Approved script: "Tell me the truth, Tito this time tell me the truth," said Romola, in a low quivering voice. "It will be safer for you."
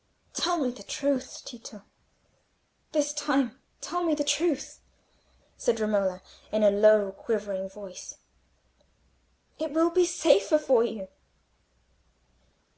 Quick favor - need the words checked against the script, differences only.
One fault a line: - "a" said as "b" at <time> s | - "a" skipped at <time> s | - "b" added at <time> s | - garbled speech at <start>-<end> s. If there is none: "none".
none